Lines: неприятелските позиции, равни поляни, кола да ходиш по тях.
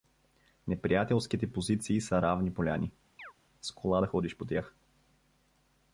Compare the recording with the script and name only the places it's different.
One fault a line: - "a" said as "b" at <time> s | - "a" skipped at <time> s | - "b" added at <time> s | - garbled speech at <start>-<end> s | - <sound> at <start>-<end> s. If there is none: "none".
- "са" added at 2.0 s
- chirp at 3.2-3.3 s
- "с" added at 3.6 s